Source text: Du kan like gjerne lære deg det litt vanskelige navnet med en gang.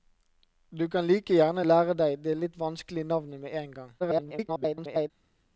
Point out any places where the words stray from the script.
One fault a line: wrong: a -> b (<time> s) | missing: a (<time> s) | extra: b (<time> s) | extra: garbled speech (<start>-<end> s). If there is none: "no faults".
extra: garbled speech (4.0-5.1 s)